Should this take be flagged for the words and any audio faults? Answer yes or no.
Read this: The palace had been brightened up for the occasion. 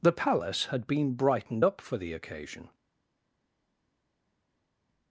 no